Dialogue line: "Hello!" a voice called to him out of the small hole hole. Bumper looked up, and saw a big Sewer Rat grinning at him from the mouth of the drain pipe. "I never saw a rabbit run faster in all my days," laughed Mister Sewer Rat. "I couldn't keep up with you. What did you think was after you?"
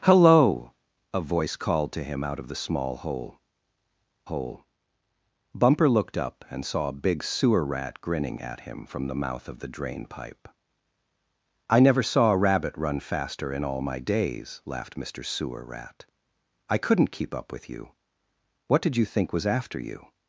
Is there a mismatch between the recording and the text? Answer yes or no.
no